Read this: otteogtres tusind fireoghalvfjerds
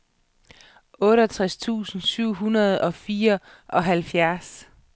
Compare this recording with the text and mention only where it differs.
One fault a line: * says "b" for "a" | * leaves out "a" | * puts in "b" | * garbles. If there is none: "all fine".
* puts in "syv hundrede og"